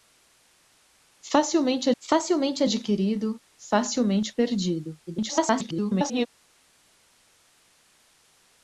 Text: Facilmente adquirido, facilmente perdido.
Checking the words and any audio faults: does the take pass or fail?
fail